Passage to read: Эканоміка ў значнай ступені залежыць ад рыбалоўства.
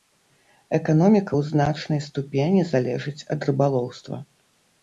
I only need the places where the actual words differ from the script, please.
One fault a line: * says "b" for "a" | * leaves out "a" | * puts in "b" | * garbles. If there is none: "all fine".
all fine